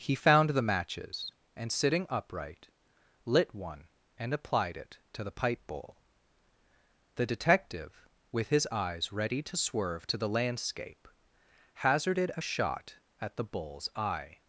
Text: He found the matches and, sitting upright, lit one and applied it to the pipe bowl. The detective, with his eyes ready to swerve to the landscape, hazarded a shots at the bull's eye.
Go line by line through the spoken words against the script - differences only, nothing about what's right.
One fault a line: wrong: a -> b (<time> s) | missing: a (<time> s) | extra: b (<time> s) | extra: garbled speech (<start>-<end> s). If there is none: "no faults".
wrong: shots -> shot (12.4 s)